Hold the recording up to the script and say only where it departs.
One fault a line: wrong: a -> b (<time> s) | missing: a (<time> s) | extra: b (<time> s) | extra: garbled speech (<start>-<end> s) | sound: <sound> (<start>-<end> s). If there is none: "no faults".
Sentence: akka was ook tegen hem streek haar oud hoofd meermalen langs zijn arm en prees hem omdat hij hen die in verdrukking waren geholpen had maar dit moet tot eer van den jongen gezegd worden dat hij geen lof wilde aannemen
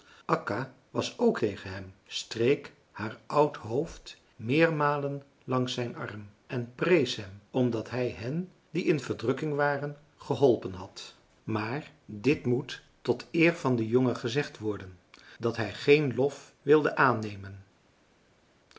no faults